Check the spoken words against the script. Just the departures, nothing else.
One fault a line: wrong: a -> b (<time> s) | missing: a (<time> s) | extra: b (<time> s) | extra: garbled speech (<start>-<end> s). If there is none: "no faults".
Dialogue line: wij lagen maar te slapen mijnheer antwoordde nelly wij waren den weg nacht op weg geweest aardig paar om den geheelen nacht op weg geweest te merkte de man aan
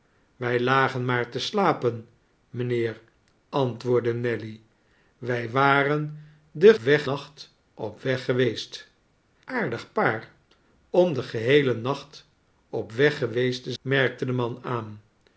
no faults